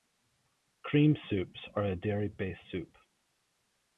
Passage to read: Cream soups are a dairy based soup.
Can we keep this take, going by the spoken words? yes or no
yes